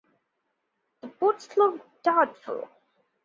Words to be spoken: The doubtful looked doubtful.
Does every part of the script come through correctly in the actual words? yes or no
no